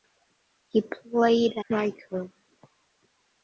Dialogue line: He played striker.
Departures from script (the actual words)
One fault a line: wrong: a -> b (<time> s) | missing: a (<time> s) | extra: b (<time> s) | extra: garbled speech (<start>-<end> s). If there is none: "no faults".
no faults